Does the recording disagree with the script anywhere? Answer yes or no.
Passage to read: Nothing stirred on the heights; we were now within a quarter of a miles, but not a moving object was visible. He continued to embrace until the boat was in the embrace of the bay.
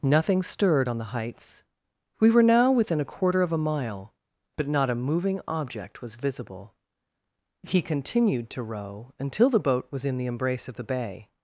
yes